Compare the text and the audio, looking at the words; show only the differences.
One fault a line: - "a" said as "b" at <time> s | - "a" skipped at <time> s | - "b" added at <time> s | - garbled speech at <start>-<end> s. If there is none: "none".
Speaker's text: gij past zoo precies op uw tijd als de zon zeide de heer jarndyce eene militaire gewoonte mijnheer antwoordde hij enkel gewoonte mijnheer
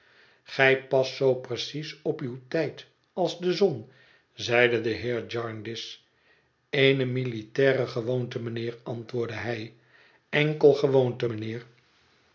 none